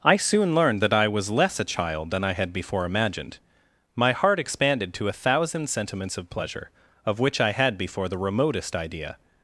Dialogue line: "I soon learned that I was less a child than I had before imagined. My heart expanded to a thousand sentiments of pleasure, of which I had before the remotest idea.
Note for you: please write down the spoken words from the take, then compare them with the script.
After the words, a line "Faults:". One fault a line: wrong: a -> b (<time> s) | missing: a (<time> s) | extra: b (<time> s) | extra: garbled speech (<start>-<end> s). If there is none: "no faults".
"I soon learned that I was less a child than I had before imagined. My heart expanded to a thousand sentiments of pleasure, of which I had before the remotest idea.
Faults:
no faults